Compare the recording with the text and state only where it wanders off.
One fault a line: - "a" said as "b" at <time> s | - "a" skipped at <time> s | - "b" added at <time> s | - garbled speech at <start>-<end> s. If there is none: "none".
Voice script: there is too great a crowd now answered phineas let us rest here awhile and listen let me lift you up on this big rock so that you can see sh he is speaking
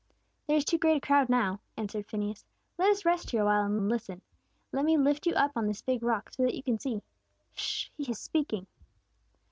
- "and" added at 3.8 s